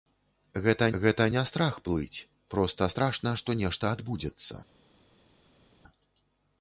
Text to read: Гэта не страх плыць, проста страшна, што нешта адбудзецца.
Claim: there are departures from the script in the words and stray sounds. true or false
true